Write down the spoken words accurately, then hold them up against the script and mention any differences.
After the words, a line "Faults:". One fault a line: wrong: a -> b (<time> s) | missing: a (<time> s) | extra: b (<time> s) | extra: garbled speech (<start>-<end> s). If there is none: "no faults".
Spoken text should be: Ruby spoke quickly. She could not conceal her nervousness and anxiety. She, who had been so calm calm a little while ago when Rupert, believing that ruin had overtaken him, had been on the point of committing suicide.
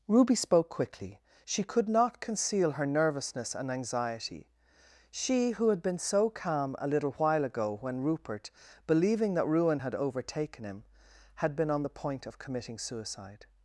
Ruby spoke quickly. She could not conceal her nervousness and anxiety. She, who had been so calm a little while ago when Rupert, believing that ruin had overtaken him, had been on the point of committing suicide.
Faults:
missing: calm (6.7 s)